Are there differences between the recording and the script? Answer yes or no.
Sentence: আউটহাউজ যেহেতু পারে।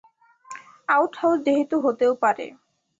yes